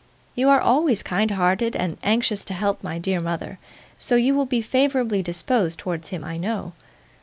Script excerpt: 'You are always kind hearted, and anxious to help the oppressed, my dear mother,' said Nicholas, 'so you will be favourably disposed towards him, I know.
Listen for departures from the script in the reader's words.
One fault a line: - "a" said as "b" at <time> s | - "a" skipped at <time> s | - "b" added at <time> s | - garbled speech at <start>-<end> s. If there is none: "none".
- "the oppressed" skipped at 2.8 s
- "said Nicholas" skipped at 3.6 s